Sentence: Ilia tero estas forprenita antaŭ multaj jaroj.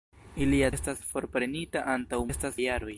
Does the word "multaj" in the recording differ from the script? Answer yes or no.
yes